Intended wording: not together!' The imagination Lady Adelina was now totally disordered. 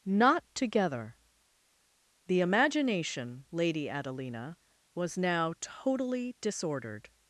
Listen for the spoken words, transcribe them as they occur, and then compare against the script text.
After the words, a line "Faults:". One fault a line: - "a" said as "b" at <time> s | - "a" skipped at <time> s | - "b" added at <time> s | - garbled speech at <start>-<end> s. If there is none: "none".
not together!' The imagination Lady Adelina was now totally disordered.
Faults:
none